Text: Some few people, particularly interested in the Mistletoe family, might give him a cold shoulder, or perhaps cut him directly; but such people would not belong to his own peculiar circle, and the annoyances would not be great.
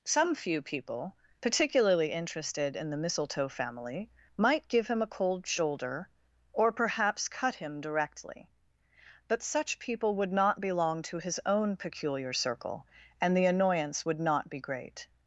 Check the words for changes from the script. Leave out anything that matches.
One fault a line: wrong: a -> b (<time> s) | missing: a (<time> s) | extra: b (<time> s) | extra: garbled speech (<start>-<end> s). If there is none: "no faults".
wrong: annoyances -> annoyance (13.4 s)